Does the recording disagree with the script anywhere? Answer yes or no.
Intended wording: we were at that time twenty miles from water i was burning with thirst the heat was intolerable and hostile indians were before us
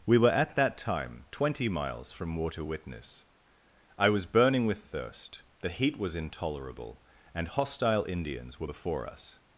yes